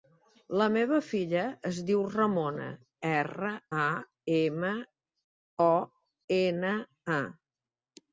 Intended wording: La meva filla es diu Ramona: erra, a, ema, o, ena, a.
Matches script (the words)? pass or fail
pass